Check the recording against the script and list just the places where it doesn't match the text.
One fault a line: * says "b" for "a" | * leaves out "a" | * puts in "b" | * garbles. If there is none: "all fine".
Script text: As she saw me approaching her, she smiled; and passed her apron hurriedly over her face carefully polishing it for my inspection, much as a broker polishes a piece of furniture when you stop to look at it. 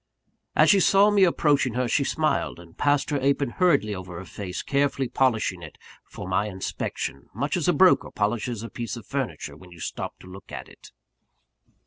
all fine